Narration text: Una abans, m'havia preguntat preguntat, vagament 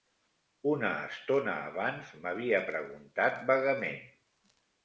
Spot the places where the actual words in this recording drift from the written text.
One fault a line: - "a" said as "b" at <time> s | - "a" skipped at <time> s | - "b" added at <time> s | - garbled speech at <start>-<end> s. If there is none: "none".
- "estona" added at 1.1 s
- "preguntat" skipped at 3.5 s